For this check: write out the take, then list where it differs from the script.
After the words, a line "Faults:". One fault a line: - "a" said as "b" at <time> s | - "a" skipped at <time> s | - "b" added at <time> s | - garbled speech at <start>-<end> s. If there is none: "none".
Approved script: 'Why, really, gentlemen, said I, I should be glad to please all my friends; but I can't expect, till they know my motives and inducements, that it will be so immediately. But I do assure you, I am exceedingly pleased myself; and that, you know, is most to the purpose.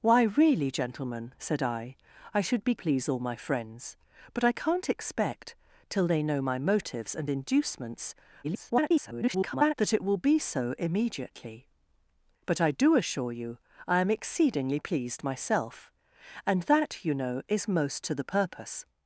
'Why, really, gentlemen, said I, I should be please all my friends; but I can't expect, till they know my motives and inducements, [garbled] that it will be so immediately. But I do assure you, I am exceedingly pleased myself; and that, you know, is most to the purpose.
Faults:
- "glad to" skipped at 2.7 s
- garbled speech at 8.4-9.7 s